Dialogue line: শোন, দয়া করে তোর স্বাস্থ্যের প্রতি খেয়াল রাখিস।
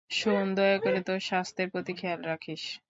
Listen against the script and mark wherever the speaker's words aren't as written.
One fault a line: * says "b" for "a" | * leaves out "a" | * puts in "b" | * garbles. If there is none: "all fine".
all fine